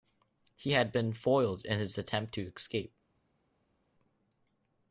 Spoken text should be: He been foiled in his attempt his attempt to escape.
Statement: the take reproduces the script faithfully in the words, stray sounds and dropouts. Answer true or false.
false